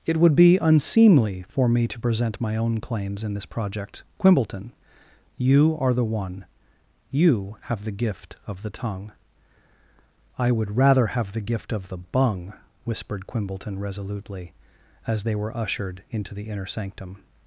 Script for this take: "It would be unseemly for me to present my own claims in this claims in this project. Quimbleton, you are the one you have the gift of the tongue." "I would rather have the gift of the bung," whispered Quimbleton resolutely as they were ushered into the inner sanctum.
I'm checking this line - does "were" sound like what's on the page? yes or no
yes